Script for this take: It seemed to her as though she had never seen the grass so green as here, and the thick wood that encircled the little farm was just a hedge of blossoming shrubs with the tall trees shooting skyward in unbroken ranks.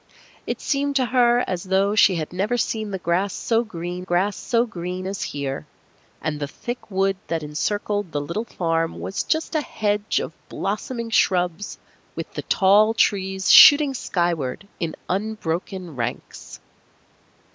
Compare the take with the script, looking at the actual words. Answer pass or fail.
fail